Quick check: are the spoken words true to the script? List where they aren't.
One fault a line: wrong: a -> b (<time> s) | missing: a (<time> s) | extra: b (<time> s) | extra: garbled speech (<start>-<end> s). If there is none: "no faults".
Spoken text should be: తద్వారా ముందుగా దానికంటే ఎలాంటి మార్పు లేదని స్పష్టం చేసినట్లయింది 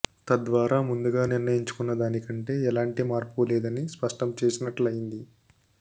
extra: నిర్ణయించుకున్న (1.3 s)